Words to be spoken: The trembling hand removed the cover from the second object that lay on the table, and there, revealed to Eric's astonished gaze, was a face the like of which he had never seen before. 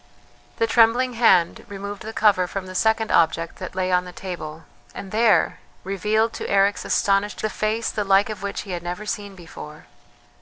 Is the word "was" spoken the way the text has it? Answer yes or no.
no